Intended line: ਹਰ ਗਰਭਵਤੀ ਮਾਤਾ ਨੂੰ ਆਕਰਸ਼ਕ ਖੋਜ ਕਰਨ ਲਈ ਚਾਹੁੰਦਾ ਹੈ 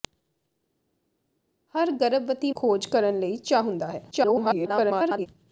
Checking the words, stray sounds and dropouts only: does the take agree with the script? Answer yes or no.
no